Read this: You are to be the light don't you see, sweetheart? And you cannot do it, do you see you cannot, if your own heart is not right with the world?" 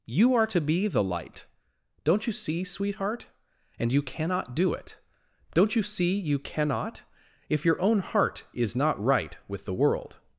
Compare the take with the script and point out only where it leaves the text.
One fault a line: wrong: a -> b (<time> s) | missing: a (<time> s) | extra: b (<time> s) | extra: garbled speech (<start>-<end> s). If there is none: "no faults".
wrong: do -> don't (5.5 s)